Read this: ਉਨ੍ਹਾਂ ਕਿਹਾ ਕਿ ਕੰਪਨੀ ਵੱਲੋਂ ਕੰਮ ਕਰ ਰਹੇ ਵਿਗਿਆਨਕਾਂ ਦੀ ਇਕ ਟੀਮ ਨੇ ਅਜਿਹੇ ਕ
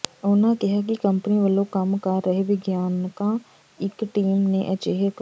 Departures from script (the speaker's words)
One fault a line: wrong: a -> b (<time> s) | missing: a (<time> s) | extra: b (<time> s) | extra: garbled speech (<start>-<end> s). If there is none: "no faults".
missing: ਦੀ (3.4 s)